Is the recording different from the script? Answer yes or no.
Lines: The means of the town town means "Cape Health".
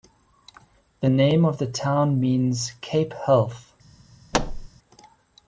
yes